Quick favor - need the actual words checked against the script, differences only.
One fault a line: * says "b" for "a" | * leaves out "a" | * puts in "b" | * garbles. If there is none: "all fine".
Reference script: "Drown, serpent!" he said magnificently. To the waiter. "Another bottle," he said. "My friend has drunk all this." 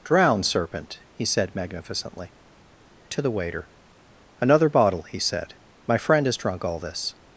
all fine